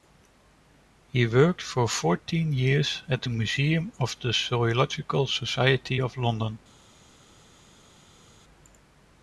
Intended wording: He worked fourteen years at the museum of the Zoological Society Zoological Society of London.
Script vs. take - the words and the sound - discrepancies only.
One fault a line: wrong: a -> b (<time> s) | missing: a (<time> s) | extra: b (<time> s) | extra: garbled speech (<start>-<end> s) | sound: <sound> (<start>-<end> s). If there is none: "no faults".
extra: for (1.6 s)
missing: Zoological Society (6.0 s)